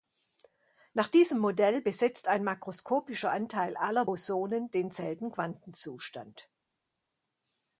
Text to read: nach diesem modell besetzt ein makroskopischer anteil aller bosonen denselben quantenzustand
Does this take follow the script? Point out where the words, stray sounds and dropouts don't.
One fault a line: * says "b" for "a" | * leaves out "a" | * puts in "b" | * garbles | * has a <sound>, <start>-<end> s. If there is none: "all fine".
all fine